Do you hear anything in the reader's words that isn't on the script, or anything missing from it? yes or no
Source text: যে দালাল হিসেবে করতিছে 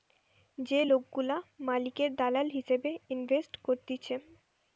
yes